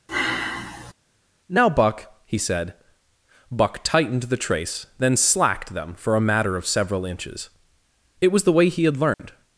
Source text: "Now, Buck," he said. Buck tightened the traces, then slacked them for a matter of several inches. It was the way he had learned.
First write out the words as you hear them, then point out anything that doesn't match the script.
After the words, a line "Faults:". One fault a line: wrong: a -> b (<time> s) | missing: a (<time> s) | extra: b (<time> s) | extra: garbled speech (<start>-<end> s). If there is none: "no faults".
"Now, Buck," he said. Buck tightened the trace, then slacked them for a matter of several inches. It was the way he had learned.
Faults:
wrong: traces -> trace (4.4 s)